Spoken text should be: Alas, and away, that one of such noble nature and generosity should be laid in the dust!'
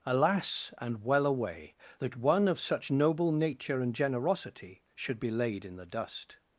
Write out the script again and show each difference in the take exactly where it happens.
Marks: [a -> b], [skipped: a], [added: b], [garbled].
Alas, and [added: well] away, that one of such noble nature and generosity should be laid in the dust!'